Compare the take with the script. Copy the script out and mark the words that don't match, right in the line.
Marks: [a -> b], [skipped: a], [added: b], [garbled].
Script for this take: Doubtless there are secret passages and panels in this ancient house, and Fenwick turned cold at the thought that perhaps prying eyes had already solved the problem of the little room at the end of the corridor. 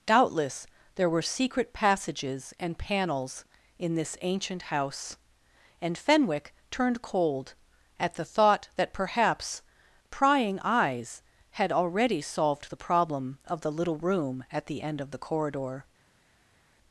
Doubtless there [are -> were] secret passages and panels in this ancient house, and Fenwick turned cold at the thought that perhaps prying eyes had already solved the problem of the little room at the end of the corridor.